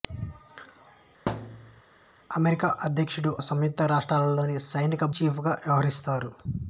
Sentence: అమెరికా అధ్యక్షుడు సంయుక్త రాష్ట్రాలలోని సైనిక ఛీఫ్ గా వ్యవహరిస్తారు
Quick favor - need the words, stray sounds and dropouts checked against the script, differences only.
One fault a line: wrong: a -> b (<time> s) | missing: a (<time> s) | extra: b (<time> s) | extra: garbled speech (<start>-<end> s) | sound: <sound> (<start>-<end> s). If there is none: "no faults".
sound: thud (1.3-1.8 s)